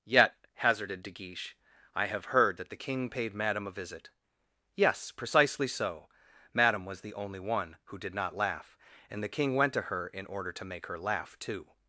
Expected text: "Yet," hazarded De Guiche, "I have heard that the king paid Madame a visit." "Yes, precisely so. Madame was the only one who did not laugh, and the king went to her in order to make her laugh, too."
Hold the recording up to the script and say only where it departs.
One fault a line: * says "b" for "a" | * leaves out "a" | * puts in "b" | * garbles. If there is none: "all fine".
all fine